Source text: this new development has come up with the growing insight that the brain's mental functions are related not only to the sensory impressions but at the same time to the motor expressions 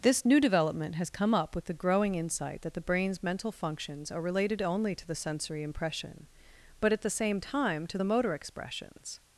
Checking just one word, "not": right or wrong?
wrong